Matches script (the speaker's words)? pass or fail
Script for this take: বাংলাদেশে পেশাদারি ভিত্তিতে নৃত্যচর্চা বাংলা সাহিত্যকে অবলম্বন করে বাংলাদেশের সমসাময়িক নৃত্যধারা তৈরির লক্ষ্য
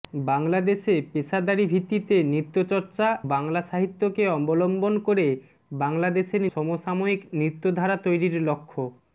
pass